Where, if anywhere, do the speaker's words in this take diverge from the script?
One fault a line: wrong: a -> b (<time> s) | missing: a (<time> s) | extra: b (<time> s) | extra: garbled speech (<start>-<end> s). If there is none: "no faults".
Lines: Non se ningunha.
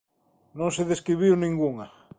extra: describiu (0.9 s)